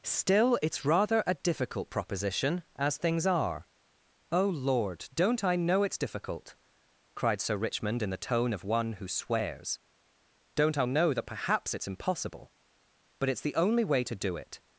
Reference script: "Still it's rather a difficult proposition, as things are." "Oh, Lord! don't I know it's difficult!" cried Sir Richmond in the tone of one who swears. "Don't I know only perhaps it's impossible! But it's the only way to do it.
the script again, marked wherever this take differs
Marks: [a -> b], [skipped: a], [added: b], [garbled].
"Still it's rather a difficult proposition, as things are." "Oh, Lord! don't I know it's difficult!" cried Sir Richmond in the tone of one who swears. "Don't I know [only -> that] perhaps it's impossible! But it's the only way to do it.